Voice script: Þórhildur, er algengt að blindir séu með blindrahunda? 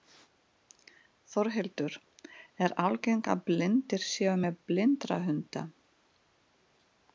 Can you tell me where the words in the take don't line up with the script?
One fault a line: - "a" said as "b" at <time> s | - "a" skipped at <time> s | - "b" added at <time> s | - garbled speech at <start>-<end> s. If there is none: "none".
none